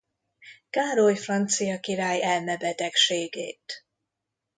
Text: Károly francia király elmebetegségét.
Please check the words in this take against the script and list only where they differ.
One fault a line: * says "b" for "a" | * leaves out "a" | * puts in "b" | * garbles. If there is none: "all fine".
all fine